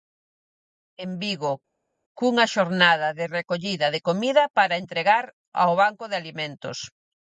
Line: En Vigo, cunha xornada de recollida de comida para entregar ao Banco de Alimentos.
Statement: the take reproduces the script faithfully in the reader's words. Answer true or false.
true